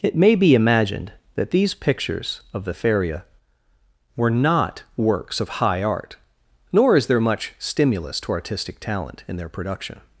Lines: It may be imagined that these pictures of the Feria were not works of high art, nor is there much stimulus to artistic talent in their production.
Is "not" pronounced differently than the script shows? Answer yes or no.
no